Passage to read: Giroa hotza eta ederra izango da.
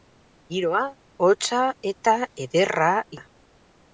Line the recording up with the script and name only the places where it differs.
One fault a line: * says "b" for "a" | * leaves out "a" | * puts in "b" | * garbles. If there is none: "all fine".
* leaves out "izango"